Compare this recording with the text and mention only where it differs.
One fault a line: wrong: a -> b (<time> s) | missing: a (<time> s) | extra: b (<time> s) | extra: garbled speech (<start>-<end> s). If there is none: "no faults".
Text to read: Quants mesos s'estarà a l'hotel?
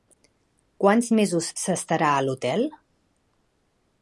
no faults